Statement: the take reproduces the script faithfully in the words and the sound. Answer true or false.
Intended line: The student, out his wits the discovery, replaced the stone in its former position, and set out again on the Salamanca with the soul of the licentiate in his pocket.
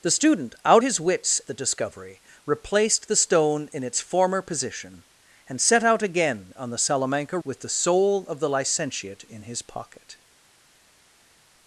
true